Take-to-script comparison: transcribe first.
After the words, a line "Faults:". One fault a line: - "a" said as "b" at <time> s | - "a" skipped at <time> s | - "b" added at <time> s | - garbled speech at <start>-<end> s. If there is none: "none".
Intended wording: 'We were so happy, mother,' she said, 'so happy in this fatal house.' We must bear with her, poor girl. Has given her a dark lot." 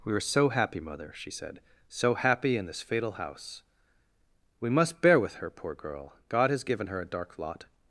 'We were so happy, mother,' she said, 'so happy in this fatal house.' We must bear with her, poor girl. God has given her a dark lot."
Faults:
- "God" added at 6.3 s